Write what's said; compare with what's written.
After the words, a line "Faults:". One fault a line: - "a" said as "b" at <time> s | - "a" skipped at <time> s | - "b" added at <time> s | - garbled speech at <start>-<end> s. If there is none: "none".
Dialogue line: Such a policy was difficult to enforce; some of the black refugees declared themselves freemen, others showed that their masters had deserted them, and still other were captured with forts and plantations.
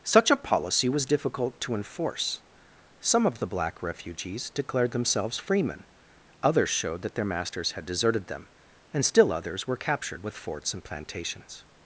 Such a policy was difficult to enforce; some of the black refugees declared themselves freemen, others showed that their masters had deserted them, and still others were captured with forts and plantations.
Faults:
- "other" said as "others" at 9.3 s